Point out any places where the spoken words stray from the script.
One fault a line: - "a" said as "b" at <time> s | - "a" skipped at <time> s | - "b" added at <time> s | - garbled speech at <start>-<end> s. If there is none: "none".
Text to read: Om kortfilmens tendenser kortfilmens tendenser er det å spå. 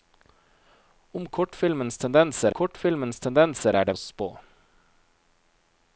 none